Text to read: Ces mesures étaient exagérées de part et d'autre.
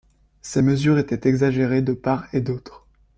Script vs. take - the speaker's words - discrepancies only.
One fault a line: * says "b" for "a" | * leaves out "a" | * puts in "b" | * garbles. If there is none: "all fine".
all fine